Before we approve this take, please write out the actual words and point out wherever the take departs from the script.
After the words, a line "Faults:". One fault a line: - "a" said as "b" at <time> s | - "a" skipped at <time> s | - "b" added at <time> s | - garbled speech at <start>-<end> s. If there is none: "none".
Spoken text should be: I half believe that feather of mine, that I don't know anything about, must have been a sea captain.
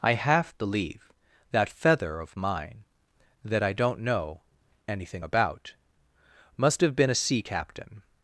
I half believe that feather of mine, that I don't know anything about, must have been a sea captain.
Faults:
none